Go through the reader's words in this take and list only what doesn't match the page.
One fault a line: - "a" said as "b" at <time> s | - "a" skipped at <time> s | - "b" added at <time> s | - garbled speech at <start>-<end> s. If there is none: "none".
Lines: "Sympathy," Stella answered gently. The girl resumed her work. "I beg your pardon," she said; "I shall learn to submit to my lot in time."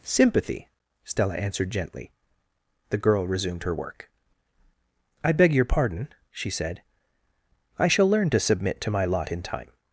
none